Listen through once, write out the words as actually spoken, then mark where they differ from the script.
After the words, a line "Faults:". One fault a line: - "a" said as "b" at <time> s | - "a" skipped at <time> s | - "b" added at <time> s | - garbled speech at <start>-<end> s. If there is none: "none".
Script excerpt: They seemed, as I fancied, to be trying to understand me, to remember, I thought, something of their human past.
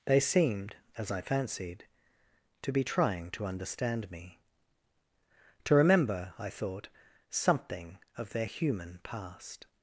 They seemed, as I fancied, to be trying to understand me, to remember, I thought, something of their human past.
Faults:
none